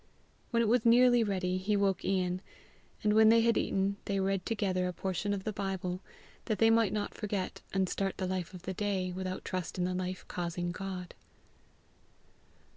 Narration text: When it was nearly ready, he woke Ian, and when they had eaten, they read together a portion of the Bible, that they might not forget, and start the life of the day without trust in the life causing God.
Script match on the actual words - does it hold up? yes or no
yes